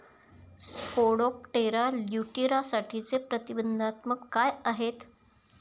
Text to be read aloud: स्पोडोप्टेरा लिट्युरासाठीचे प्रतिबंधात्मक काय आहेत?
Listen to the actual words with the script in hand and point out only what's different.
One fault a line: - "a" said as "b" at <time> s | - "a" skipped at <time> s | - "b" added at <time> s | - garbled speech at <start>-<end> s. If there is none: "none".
none